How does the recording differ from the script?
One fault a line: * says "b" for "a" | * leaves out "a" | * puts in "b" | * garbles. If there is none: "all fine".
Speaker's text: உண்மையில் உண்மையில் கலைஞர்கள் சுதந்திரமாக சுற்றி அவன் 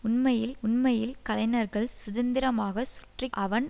all fine